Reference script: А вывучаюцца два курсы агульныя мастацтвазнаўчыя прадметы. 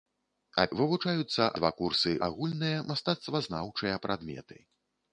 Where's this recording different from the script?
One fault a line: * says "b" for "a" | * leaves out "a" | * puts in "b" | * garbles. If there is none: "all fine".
all fine